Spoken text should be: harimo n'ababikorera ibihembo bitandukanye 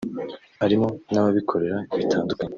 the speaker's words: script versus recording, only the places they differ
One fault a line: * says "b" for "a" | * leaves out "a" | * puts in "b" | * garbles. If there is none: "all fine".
* leaves out "ibihembo"